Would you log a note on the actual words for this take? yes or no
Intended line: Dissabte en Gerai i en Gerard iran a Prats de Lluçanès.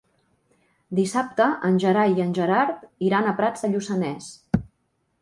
no